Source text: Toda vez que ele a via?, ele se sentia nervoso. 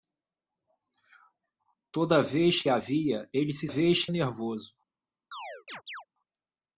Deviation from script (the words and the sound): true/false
true